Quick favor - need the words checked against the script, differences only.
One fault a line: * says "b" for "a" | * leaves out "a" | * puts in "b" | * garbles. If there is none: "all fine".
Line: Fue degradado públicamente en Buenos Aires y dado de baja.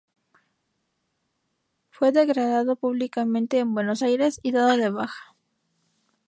all fine